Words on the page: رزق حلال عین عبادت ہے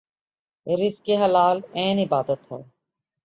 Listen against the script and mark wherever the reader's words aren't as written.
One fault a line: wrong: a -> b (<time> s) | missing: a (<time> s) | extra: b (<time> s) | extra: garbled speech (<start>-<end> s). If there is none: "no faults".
no faults